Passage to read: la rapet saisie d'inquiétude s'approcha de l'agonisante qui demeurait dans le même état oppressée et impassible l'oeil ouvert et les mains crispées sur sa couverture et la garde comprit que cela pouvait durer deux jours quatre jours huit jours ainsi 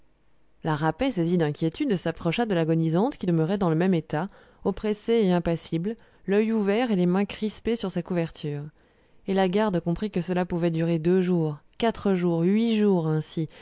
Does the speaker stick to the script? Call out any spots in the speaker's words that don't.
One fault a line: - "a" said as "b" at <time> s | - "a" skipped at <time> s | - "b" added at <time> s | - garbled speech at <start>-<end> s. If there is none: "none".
none